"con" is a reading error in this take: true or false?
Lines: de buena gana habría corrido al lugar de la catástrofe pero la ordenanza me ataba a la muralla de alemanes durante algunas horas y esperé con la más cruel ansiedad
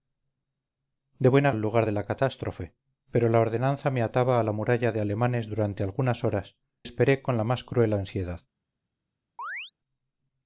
false